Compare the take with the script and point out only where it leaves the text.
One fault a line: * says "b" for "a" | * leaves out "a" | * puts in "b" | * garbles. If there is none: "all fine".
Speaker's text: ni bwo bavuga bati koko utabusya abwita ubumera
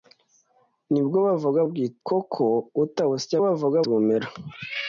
* says "abwita" for "bati"
* says "bavuga" for "abwita"